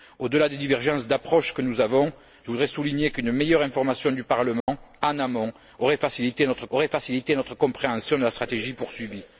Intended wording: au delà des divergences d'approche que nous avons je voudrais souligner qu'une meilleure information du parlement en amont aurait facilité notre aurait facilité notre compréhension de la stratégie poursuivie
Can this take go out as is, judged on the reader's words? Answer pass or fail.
pass